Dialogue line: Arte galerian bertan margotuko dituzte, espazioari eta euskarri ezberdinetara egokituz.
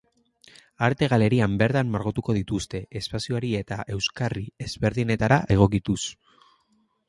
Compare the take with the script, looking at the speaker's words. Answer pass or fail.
pass